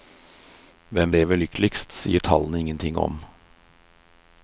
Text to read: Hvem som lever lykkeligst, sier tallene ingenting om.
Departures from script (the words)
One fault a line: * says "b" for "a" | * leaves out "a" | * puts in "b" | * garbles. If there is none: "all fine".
* leaves out "som"